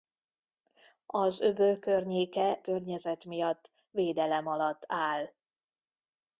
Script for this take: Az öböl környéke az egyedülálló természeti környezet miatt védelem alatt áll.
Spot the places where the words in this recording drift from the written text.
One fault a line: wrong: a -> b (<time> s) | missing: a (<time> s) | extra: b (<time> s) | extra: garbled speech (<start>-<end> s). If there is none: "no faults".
missing: az egyedülálló természeti (2.6 s)